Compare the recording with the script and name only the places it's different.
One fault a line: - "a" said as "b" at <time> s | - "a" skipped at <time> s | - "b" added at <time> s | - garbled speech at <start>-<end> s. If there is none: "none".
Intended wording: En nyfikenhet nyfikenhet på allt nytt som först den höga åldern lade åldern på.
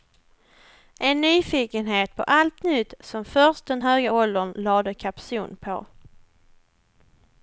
- "nyfikenhet" skipped at 2.1 s
- "åldern" said as "kapson" at 4.9 s